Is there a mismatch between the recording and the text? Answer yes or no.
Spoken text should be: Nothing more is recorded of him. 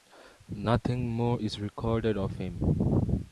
no